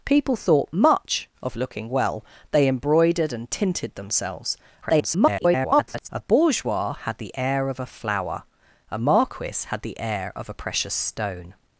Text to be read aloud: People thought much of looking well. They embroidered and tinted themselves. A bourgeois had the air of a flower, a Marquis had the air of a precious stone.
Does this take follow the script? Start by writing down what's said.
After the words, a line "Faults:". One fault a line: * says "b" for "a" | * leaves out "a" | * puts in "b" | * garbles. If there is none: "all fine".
People thought much of looking well. They embroidered and tinted themselves. [garbled] A bourgeois had the air of a flower, a Marquis had the air of a precious stone.
Faults:
* garbles